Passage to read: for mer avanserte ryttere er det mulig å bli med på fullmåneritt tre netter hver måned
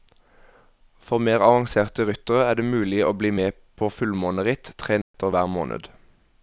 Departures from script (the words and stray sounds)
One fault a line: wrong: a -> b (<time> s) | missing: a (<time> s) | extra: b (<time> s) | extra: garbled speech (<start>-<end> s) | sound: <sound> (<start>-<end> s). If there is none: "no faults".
sound: dropout (5.0-5.1 s)